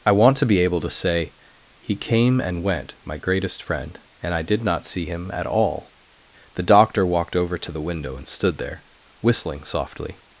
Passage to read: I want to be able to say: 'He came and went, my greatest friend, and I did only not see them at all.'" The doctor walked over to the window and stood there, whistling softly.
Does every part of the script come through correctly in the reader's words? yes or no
no